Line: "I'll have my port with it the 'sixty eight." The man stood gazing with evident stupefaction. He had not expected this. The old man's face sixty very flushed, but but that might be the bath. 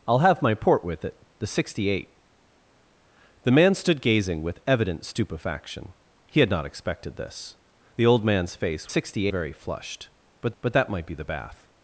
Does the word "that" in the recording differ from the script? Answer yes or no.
no